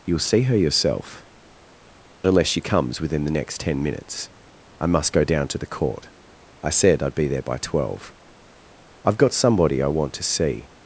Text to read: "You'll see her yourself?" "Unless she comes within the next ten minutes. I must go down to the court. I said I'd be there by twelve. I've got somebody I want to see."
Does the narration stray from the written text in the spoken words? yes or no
no